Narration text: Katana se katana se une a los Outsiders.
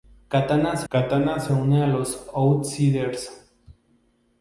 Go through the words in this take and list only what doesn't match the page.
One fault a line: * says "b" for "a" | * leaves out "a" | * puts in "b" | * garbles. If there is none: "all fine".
all fine